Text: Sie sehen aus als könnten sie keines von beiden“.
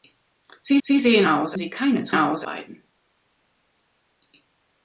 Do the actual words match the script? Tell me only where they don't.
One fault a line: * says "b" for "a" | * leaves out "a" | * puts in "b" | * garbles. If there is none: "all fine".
* puts in "sie"
* leaves out "als könnten"
* says "aus" for "von"